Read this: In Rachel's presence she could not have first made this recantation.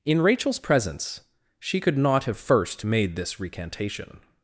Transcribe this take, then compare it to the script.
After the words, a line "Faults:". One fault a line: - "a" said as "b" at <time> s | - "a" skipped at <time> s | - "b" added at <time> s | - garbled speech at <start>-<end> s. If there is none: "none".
In Rachel's presence she could not have first made this recantation.
Faults:
none